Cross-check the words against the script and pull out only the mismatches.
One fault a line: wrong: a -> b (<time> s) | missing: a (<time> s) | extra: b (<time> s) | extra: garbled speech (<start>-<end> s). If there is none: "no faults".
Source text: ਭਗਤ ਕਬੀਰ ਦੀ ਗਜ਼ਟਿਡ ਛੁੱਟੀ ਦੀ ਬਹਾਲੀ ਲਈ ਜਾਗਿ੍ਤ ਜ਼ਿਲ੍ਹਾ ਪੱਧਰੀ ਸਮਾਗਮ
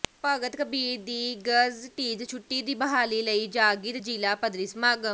no faults